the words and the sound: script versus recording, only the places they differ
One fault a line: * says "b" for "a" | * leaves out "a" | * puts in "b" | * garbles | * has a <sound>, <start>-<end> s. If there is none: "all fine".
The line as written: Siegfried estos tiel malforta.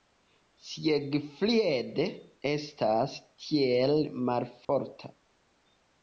* says "estas" for "estos"
* has a dropout, 4.6-4.7 s